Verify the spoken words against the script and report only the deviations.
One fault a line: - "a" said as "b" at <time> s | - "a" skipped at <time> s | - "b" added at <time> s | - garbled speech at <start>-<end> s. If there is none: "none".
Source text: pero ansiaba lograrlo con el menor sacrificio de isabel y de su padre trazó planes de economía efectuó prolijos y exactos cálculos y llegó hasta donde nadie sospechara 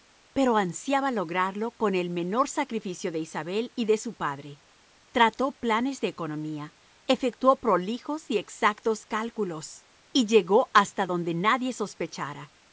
none